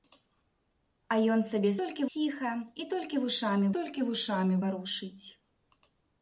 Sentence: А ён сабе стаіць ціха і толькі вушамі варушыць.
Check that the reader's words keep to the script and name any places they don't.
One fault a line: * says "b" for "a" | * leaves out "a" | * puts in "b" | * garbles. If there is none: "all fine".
* says "толькі" for "стаіць"
* puts in "толькі вушамі"